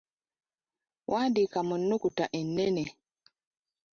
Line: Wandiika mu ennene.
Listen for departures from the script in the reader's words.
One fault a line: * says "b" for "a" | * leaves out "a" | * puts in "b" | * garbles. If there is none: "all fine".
* puts in "nnukuta"